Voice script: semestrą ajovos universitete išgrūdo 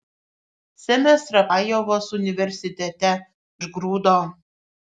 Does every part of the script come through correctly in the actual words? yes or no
yes